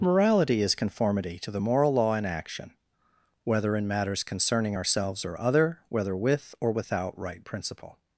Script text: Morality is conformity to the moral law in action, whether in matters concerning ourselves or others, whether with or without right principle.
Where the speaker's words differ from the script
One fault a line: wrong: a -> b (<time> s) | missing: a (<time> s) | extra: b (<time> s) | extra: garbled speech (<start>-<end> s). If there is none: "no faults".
wrong: others -> other (5.4 s)